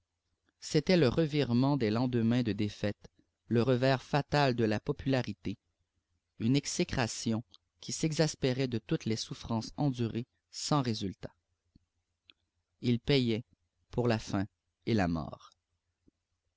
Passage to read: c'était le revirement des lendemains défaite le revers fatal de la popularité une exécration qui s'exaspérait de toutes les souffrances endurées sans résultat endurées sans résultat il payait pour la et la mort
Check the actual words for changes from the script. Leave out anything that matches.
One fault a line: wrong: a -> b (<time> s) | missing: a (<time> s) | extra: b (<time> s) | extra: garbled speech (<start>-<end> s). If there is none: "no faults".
extra: de (2.4 s)
missing: endurées sans résultat (11.3 s)
extra: faim (14.2 s)